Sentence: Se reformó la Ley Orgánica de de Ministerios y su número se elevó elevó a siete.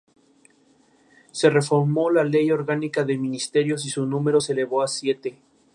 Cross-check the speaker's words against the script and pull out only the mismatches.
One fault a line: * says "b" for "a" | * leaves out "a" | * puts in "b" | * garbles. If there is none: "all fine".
* leaves out "de"
* leaves out "elevó"